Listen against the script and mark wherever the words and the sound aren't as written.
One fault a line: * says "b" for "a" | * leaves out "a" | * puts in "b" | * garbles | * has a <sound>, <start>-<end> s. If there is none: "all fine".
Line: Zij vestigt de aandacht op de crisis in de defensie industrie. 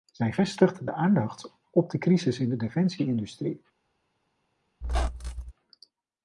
* has a squeak, 4.8-5.5 s